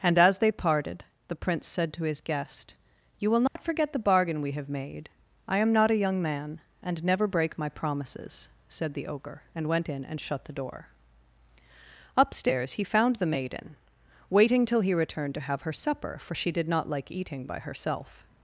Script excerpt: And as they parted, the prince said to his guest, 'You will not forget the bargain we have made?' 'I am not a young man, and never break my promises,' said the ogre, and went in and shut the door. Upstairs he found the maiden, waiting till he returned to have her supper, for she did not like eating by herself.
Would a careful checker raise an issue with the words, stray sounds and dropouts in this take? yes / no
yes